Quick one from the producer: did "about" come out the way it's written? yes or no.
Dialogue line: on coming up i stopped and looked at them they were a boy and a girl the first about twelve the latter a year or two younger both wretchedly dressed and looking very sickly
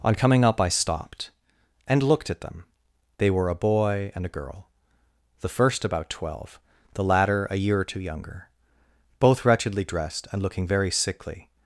yes